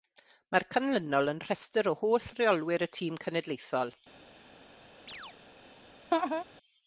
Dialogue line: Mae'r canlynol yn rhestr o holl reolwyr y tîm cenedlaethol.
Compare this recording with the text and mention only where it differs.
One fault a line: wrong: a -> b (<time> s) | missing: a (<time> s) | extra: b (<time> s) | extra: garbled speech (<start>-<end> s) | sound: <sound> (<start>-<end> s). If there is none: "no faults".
sound: chirp (5.1-5.4 s)
sound: laugh (6.1-6.4 s)